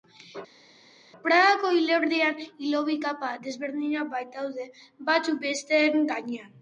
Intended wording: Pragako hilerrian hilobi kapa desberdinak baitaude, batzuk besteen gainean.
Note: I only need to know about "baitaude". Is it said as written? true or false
true